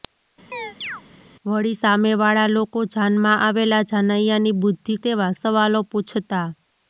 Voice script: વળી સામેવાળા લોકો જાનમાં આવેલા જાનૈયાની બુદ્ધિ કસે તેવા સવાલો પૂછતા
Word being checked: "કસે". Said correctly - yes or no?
no